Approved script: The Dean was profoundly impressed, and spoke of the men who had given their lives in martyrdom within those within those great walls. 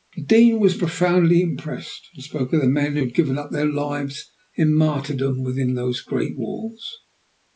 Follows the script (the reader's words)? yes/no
no